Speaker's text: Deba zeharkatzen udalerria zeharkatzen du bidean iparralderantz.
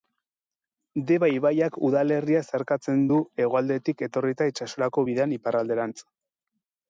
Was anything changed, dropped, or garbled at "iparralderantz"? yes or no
no